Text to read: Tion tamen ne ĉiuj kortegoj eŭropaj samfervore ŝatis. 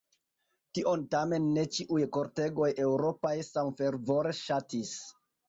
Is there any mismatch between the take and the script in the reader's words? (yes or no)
no